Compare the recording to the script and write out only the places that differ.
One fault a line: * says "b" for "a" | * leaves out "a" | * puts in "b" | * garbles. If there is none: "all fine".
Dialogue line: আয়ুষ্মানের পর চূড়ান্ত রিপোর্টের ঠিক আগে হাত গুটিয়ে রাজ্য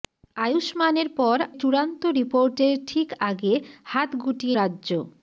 all fine